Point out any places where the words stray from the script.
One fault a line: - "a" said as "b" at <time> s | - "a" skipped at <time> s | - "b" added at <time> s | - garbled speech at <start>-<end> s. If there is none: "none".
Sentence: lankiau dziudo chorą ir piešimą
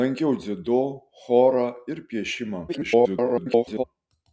- garbled speech at 2.7-3.8 s